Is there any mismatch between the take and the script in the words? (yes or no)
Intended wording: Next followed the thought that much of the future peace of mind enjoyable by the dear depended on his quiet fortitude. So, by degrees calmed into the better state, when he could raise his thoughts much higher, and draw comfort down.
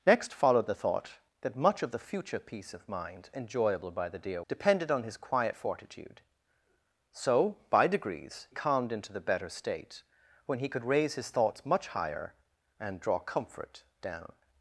no